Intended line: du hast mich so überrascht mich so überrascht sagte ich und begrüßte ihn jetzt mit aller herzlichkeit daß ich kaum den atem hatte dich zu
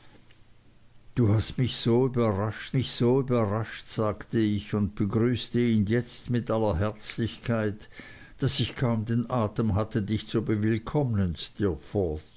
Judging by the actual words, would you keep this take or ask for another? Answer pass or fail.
pass